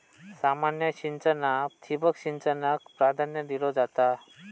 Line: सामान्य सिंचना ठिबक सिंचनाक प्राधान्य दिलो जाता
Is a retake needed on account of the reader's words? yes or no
no